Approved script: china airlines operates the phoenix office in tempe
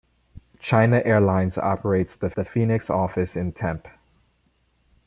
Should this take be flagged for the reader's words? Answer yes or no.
yes